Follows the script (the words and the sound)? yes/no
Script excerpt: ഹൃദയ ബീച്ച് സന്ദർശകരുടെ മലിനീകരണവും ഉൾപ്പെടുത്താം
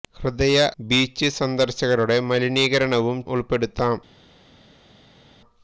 yes